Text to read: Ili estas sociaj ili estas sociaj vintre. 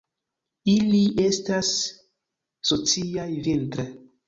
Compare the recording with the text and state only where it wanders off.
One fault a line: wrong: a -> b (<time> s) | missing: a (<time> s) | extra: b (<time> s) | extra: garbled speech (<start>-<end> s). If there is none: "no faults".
missing: ili estas sociaj (3.3 s)